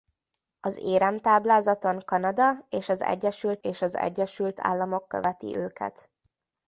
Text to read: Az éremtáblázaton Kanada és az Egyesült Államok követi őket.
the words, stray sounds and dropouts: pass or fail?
fail